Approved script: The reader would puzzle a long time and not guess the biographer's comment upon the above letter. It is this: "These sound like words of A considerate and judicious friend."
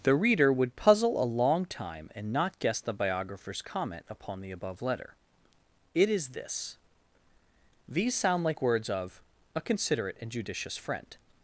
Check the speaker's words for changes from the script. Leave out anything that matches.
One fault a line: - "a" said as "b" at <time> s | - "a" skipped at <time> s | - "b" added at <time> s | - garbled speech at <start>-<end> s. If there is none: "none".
none